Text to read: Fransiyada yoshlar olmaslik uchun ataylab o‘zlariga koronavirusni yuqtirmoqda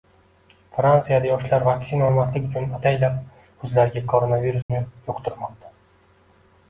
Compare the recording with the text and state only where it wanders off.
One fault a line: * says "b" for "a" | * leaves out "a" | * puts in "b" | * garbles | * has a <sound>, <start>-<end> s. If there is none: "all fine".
* puts in "vaksina"
* has a dropout, 4.6-4.7 s